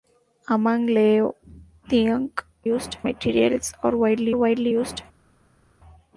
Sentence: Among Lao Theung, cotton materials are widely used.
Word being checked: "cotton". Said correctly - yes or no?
no